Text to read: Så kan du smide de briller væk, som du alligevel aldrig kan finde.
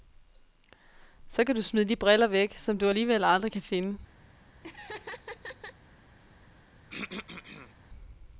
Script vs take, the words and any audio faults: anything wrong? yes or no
yes